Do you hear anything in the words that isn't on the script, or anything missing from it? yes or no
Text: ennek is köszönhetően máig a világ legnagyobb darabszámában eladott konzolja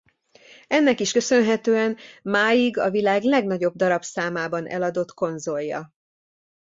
no